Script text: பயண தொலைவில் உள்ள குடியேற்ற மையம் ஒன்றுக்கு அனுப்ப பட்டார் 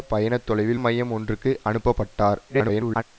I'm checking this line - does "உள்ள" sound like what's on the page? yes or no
no